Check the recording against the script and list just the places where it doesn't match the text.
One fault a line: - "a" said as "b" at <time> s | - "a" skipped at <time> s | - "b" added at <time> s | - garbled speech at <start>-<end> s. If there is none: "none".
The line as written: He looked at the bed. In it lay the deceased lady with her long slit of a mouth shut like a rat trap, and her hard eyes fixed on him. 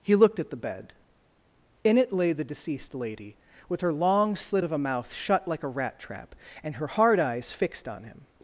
none